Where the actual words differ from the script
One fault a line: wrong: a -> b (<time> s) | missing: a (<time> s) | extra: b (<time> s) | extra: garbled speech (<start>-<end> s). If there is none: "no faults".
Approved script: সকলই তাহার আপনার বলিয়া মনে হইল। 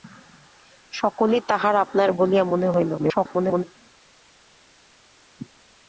extra: garbled speech (3.0-3.6 s)